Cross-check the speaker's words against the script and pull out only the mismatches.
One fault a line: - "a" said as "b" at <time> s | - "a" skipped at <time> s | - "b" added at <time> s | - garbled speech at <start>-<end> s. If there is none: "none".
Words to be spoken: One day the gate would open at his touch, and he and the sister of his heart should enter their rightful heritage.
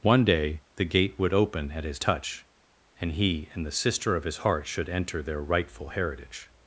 none